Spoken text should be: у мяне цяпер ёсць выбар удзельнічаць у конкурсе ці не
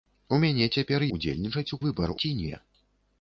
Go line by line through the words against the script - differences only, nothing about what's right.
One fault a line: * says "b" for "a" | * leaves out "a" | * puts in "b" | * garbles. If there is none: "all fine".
* leaves out "ёсць выбар"
* says "выбар" for "конкурсе"